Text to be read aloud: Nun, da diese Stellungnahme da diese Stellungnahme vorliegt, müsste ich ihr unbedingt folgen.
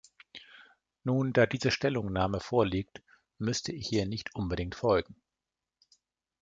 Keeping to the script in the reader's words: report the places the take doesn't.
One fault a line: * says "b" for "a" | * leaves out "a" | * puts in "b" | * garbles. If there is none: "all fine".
* leaves out "da diese Stellungnahme"
* puts in "nicht"